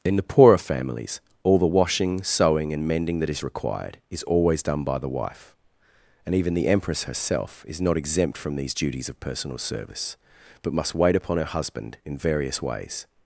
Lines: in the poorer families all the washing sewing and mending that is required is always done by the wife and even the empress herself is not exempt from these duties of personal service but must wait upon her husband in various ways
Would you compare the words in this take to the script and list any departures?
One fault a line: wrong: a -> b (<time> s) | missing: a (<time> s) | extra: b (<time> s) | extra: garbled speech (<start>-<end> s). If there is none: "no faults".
no faults